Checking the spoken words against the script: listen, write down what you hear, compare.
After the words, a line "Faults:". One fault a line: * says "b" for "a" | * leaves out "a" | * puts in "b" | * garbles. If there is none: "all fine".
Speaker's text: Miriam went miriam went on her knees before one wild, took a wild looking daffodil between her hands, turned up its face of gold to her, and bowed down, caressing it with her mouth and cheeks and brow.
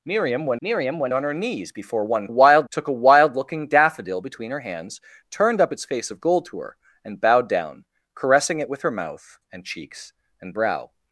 Miriam went miriam went on her knees before one wild, took a wild looking daffodil between her hands, turned up its face of gold to her, and bowed down, caressing it with her mouth and cheeks and brow.
Faults:
all fine